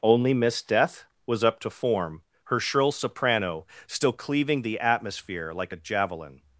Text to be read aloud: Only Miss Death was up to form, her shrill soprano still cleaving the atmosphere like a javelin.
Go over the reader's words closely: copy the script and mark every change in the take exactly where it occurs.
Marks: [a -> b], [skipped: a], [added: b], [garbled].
Only Miss Death was up to form, her shrill soprano still cleaving the atmosphere like a javelin.